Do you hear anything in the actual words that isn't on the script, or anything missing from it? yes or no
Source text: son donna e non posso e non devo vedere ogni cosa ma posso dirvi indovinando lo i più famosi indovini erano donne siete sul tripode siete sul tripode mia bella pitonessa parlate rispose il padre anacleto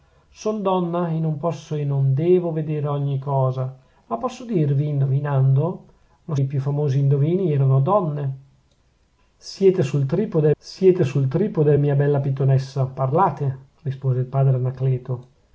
no